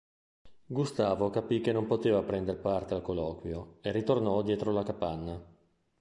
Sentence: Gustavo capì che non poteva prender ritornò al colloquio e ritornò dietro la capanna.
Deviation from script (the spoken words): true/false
true